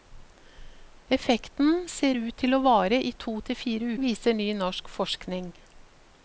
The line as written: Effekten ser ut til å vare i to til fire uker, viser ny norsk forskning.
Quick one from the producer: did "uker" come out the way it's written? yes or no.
no